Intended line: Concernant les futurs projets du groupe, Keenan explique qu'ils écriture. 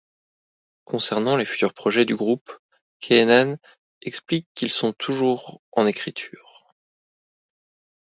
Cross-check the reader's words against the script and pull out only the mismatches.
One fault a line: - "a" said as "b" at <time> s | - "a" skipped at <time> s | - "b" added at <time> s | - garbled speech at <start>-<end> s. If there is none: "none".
- "sont toujours en" added at 4.7 s